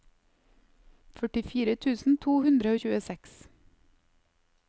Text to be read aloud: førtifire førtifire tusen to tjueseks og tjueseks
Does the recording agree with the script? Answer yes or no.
no